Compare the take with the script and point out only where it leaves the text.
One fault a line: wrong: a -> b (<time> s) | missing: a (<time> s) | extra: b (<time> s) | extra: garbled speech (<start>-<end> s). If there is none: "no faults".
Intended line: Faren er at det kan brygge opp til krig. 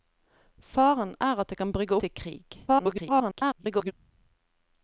missing: opp (2.0 s)
extra: garbled speech (2.7-3.9 s)